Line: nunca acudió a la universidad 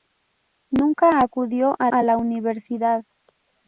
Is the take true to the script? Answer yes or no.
no